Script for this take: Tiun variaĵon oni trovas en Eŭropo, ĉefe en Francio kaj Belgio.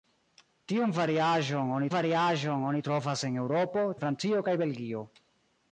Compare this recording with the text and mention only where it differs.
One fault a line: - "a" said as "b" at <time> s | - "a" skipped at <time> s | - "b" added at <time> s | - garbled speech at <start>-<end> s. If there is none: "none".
- "variaĵon oni" added at 1.9 s
- "ĉefe" skipped at 3.9 s